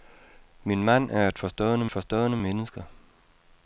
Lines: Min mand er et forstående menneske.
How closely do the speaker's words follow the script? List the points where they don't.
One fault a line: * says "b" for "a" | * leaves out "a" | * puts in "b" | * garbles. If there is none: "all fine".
* puts in "forstående"